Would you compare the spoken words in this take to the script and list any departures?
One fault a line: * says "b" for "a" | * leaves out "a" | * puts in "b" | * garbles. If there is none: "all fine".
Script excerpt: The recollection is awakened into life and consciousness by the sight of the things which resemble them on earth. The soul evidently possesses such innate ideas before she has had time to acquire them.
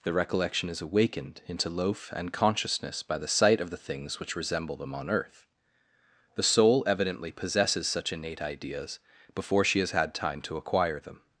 * says "loaf" for "life"